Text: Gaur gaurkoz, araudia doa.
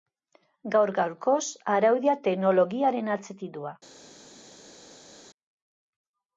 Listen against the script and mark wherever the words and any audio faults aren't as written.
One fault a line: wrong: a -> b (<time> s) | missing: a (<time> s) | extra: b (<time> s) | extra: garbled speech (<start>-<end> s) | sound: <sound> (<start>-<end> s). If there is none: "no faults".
extra: teknologiaren atzetik (2.3 s)